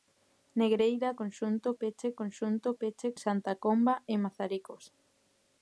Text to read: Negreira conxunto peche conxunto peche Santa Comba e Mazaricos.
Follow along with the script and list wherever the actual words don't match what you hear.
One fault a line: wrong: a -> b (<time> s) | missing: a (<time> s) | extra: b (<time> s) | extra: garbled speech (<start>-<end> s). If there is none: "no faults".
no faults